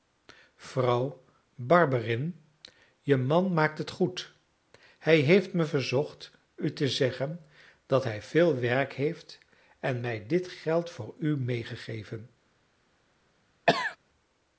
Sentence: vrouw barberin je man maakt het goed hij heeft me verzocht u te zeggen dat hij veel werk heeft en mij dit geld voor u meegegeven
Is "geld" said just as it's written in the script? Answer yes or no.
yes